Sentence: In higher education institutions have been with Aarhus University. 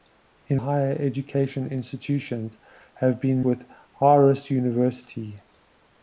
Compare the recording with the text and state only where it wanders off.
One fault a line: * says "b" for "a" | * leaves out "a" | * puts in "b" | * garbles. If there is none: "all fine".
all fine